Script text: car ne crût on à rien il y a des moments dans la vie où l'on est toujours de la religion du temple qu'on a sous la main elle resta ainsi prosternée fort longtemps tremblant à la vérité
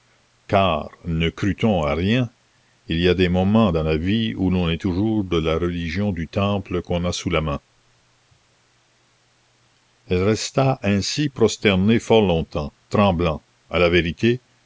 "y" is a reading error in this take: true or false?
false